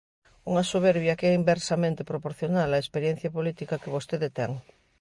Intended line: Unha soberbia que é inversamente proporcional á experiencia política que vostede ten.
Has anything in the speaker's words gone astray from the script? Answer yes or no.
no